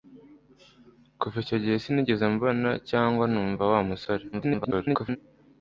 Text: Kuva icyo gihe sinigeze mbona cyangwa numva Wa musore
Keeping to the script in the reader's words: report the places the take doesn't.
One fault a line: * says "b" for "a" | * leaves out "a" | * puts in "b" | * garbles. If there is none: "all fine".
* garbles